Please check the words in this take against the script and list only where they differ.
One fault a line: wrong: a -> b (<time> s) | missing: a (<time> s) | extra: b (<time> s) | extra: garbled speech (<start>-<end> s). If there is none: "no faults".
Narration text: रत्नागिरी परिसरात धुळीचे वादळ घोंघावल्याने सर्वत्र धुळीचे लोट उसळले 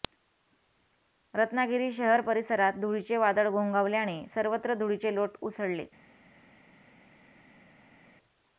extra: शहर (1.9 s)